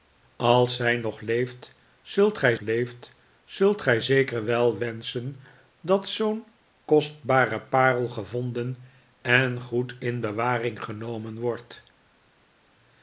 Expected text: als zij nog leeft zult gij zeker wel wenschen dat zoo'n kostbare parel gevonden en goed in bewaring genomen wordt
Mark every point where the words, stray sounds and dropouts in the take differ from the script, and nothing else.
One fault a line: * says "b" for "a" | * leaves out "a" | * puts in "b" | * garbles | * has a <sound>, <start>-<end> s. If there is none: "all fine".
* puts in "leeft zult gij"